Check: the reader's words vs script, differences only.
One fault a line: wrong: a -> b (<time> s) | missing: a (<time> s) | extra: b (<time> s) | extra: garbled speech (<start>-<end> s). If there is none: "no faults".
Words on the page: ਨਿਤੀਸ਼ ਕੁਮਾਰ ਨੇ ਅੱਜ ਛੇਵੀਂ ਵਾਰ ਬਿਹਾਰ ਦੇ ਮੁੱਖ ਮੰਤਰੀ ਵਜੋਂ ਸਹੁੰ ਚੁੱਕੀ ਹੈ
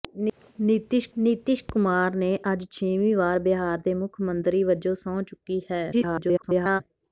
extra: ਨਿਤੀਸ਼ (1.2 s)
extra: garbled speech (5.9-6.8 s)